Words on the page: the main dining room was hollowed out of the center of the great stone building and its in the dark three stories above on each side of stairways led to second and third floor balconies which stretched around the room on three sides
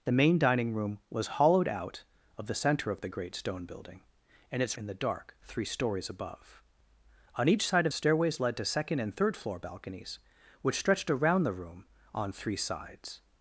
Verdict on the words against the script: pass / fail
pass